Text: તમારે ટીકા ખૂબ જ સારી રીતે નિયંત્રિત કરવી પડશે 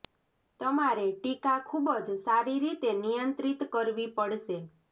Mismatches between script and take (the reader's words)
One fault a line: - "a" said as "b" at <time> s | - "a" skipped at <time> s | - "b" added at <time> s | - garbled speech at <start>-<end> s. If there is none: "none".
none